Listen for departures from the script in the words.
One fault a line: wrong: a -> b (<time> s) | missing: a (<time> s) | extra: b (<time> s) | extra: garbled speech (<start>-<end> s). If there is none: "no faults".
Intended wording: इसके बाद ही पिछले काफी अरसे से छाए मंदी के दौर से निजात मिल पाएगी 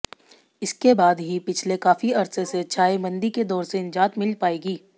no faults